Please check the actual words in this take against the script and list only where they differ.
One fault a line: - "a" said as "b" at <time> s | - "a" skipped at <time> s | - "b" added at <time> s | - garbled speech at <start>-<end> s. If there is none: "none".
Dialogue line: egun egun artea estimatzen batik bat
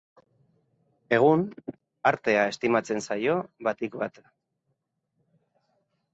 - "egun" skipped at 1.4 s
- "zaio" added at 3.1 s